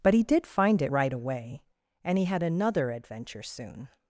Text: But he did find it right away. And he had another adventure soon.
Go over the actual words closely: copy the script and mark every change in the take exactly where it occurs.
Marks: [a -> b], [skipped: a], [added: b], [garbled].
But he did find it right away. And he had another adventure soon.